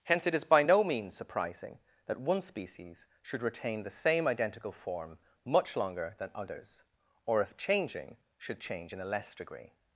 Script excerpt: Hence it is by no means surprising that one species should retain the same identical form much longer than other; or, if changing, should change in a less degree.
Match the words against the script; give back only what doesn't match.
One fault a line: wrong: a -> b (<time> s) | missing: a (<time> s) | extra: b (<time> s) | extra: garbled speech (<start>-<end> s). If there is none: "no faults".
wrong: other -> others (6.3 s)